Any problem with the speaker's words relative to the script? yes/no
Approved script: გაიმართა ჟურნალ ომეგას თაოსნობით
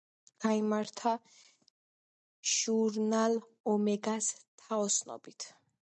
no